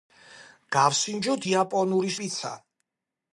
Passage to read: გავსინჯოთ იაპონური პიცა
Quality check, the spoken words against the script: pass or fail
pass